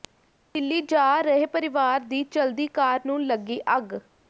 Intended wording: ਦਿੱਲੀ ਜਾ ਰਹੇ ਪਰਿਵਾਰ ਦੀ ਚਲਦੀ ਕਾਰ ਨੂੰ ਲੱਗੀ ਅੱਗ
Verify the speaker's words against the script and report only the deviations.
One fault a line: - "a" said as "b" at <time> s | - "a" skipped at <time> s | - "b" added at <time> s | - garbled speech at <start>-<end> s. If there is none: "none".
none